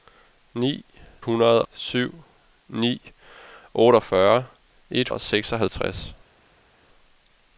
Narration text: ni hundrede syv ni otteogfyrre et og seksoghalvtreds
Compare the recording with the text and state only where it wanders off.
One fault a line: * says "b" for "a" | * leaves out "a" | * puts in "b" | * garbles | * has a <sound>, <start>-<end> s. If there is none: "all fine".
all fine